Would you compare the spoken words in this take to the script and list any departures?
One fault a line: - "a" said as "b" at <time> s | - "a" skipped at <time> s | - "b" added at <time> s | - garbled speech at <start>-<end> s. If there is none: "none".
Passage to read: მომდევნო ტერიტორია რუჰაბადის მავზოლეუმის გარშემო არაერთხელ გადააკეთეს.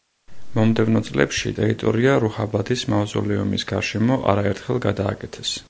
- "წლებში" added at 1.1 s